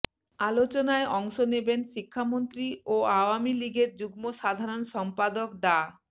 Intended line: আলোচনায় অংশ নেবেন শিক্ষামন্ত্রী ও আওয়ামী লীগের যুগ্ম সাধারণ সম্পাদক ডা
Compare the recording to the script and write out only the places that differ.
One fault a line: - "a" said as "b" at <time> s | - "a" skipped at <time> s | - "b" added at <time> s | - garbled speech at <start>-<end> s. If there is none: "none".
none